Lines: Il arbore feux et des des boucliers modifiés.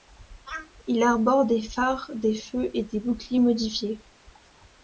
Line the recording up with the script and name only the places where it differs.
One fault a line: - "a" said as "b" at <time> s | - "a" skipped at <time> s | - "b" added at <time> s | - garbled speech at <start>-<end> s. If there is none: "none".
- "des phares des" added at 1.4 s
- "des" skipped at 3.0 s